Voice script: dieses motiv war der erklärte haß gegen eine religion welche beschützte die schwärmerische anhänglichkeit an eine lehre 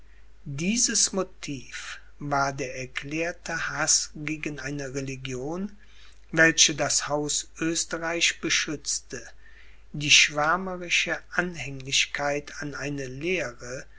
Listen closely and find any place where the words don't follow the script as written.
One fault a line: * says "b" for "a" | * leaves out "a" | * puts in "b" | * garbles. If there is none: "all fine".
* puts in "das haus oesterreich"